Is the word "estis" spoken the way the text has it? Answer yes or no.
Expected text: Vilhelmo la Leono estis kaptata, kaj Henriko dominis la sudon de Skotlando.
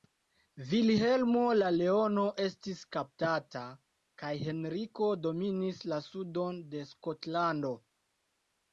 yes